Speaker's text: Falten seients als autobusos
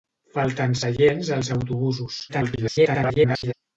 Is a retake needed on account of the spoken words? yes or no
yes